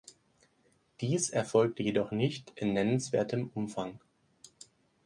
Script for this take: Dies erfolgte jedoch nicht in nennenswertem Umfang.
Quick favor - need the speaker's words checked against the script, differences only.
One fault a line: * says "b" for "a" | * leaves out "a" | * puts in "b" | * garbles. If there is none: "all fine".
all fine